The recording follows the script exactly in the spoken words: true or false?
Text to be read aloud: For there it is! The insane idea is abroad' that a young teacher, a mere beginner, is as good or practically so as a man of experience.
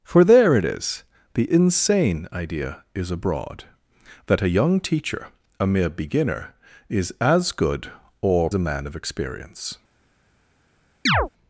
false